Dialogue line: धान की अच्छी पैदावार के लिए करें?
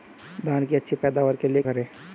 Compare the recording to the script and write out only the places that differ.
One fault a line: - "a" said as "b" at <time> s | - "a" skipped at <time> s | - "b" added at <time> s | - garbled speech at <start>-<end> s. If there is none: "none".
none